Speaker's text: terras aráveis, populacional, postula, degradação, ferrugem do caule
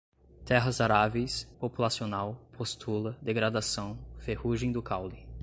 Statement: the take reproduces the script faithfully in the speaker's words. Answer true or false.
true